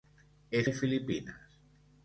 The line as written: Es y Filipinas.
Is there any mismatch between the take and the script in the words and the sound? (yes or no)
no